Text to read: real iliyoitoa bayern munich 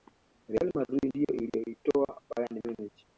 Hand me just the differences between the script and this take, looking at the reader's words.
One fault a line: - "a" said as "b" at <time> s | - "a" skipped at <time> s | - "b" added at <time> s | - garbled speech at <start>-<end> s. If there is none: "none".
- "madrid ndiyo" added at 0.8 s